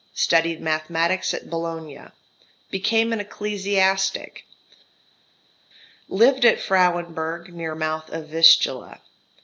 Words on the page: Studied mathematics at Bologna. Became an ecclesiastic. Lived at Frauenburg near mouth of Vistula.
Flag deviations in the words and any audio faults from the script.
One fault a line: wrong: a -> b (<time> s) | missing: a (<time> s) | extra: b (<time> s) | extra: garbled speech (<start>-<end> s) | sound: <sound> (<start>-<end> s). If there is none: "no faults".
no faults